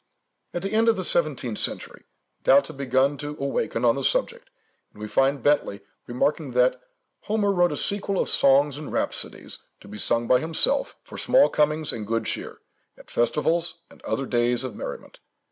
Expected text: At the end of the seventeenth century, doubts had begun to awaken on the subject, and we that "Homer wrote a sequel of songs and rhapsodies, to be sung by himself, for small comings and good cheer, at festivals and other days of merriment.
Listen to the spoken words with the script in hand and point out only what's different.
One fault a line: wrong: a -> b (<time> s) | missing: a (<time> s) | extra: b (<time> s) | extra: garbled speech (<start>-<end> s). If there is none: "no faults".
extra: find Bentley remarking (5.1 s)